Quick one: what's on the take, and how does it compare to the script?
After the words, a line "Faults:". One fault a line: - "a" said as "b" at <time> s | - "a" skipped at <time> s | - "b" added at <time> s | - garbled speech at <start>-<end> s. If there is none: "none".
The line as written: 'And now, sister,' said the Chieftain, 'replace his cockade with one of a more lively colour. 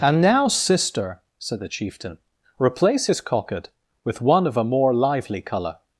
'And now, sister,' said the Chieftain, 'replace his cockade with one of a more lively colour.
Faults:
none